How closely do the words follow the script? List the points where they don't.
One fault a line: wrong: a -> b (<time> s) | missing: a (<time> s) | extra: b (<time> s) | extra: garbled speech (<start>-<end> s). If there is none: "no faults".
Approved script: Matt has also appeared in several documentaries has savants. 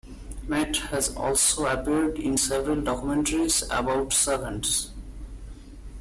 wrong: has -> about (3.6 s)